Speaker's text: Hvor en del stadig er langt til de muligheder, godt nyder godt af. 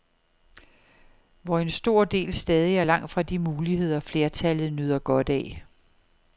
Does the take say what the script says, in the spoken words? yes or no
no